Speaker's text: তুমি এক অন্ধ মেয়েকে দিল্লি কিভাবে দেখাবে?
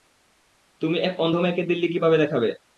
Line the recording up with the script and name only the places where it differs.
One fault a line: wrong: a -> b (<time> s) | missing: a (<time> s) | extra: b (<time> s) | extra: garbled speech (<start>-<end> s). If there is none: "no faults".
no faults